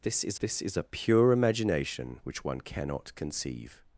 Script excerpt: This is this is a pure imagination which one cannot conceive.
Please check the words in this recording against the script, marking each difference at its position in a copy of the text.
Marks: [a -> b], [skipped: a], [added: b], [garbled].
This is this is a pure imagination which one cannot conceive.